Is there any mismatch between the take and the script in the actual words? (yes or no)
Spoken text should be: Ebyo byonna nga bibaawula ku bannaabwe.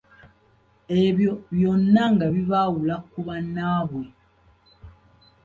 no